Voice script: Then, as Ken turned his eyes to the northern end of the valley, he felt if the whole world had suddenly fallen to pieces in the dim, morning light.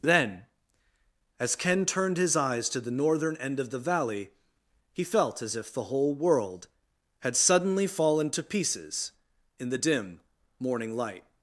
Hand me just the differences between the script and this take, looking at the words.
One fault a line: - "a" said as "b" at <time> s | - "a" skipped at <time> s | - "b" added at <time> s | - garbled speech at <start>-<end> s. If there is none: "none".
- "as" added at 5.4 s